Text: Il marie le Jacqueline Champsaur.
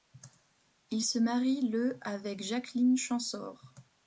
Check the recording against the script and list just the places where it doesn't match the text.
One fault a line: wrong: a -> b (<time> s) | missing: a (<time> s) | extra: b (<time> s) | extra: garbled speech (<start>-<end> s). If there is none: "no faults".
extra: se (1.0 s)
extra: avec (2.0 s)